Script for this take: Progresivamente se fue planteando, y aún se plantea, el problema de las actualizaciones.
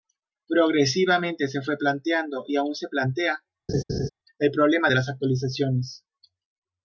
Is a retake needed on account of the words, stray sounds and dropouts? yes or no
yes